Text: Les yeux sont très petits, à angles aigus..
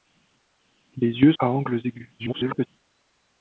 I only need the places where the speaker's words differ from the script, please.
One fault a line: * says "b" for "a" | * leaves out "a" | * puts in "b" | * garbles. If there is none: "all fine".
* leaves out "sont très petits"
* garbles